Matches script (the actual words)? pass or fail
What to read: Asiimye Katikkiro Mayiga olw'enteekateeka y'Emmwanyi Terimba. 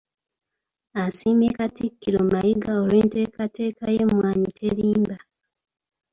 pass